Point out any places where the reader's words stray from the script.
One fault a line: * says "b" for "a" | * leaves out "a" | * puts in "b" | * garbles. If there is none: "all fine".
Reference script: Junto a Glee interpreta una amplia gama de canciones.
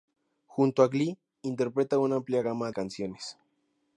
* leaves out "de"